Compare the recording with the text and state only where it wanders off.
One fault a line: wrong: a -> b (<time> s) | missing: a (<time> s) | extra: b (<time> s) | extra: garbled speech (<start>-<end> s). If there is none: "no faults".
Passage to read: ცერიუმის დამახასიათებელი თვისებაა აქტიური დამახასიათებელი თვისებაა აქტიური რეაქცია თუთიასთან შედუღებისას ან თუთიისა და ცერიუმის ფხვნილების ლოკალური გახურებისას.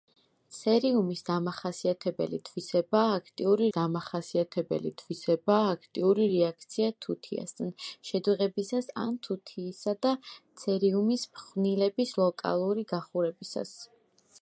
no faults